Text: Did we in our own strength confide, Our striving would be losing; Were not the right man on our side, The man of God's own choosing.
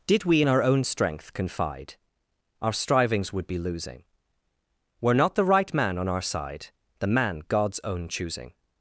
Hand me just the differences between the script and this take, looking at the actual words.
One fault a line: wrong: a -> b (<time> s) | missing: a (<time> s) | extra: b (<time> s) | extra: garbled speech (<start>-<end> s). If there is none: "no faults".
wrong: striving -> strivings (2.7 s)
missing: of (7.4 s)